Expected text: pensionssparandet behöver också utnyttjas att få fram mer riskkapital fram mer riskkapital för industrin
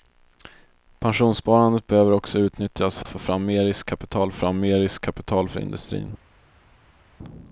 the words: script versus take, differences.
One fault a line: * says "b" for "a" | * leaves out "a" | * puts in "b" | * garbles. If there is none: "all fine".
all fine